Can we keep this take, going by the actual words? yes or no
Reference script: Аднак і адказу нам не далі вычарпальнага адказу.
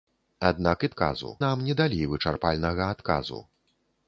yes